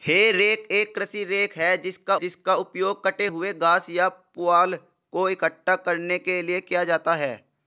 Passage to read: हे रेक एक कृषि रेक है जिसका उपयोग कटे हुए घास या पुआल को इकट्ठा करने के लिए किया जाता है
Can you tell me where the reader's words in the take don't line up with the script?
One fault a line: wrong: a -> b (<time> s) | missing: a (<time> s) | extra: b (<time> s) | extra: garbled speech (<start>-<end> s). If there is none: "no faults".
extra: जिसका (2.1 s)